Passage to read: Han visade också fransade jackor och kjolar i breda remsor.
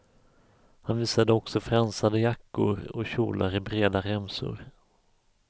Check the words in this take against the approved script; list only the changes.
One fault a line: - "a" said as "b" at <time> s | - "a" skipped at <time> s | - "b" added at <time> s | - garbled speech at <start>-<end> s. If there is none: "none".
none